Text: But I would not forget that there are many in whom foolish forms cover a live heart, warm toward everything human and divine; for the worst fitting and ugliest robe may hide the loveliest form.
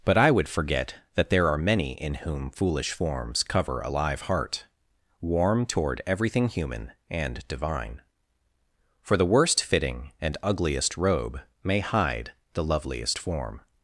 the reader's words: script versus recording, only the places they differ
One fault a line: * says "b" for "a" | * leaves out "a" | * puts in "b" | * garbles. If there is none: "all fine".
* leaves out "not"